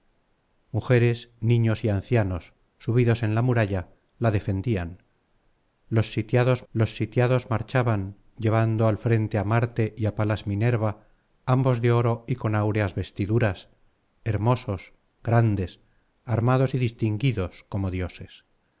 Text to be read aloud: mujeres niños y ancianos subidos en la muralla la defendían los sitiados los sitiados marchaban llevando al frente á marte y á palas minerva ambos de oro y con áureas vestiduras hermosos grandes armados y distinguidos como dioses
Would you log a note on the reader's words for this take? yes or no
no